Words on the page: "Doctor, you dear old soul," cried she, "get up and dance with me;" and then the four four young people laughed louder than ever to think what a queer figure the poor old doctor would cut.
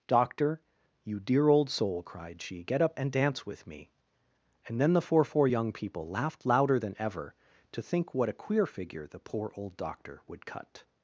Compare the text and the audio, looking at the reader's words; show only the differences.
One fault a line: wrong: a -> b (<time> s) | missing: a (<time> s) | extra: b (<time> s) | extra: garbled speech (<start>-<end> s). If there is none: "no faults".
no faults